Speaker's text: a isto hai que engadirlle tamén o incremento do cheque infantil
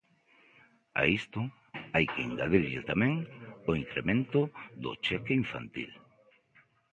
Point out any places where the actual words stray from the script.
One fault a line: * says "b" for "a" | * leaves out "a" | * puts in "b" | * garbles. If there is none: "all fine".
all fine